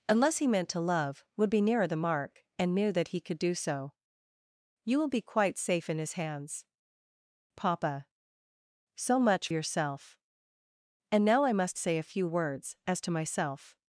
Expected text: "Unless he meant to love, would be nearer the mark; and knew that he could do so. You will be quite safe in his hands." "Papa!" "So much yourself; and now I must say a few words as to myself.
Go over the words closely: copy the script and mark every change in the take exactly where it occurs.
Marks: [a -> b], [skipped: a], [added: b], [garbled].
"Unless he meant to love, would be nearer the mark; and knew that he could do so. You will be quite safe in his hands." "Papa!" "So much yourself; and now I must say a few words as to myself.